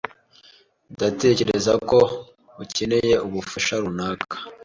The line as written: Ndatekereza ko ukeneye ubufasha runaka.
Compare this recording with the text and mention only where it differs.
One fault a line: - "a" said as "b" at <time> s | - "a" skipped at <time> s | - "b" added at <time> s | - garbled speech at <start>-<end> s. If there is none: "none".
none